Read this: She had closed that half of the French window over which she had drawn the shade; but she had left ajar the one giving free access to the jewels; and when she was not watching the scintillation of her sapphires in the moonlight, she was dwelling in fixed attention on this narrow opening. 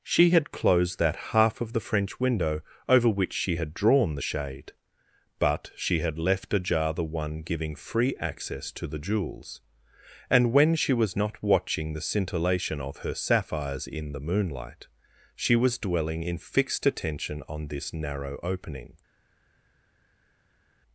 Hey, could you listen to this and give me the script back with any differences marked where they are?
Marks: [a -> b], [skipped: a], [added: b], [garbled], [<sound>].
She had closed that half of the French window over which she had drawn the shade; but she had left ajar the one giving free access to the jewels; and when she was not watching the scintillation of her sapphires in the moonlight, she was dwelling in fixed attention on this narrow opening.